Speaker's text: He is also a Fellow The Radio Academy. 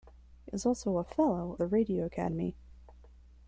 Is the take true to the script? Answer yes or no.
yes